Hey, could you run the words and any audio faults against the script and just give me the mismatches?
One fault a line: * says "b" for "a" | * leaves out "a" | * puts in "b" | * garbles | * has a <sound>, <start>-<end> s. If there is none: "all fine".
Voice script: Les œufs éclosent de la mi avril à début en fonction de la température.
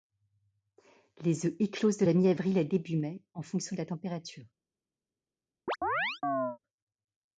* puts in "mai"
* has a chirp, 5.7-6.6 s